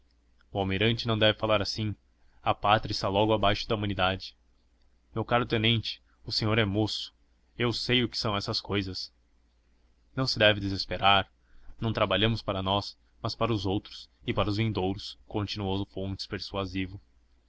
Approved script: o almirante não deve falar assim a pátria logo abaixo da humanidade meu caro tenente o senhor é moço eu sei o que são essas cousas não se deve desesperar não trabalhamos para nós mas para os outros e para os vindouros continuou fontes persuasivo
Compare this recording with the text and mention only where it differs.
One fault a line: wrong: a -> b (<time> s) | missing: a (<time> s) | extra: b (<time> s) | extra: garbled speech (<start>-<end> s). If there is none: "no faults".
extra: está (2.9 s)